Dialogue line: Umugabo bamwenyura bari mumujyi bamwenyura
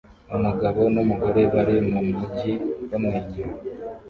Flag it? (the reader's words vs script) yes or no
yes